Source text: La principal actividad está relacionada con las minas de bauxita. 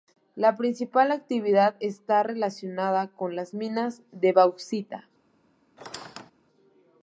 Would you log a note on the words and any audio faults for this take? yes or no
yes